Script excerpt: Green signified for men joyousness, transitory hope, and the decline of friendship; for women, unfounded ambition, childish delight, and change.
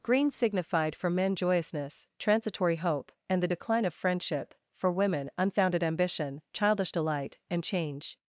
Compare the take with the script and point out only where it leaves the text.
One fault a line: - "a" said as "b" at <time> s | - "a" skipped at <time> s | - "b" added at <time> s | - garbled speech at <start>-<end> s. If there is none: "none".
none